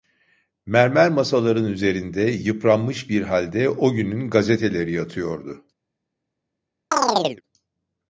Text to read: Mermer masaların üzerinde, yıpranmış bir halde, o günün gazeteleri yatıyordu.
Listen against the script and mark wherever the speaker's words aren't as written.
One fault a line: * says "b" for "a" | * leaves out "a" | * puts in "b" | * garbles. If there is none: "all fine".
all fine